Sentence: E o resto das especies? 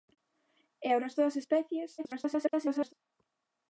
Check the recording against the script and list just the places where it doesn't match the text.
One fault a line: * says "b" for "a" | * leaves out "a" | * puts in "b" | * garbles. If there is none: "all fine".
* garbles